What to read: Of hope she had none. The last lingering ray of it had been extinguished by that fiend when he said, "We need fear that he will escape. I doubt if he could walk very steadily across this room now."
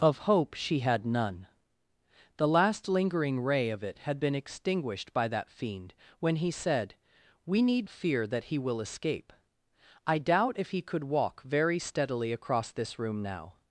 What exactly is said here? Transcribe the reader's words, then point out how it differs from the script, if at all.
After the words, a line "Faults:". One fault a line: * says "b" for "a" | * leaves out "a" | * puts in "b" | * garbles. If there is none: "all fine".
Of hope she had none. The last lingering ray of it had been extinguished by that fiend when he said, "We need fear that he will escape. I doubt if he could walk very steadily across this room now."
Faults:
all fine